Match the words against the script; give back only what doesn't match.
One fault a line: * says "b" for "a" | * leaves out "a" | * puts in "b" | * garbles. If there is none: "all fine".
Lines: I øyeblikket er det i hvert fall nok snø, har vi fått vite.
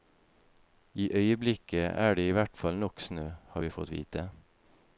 all fine